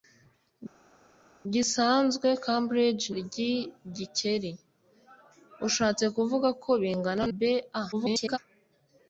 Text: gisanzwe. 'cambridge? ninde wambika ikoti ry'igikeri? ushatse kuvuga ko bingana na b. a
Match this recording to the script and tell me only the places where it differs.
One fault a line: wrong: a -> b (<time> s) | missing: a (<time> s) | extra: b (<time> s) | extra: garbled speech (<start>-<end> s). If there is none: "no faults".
missing: ninde wambika ikoti (3.0 s)
missing: na (7.2 s)
extra: garbled speech (7.9-8.4 s)